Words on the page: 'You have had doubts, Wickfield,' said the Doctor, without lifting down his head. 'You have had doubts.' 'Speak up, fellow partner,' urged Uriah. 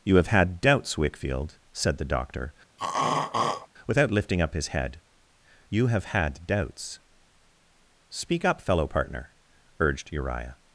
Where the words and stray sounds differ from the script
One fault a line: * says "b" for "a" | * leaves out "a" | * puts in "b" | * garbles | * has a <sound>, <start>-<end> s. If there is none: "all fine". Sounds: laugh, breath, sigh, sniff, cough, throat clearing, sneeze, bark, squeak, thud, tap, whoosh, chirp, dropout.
* has a throat clearing, 2.8-3.7 s
* says "up" for "down"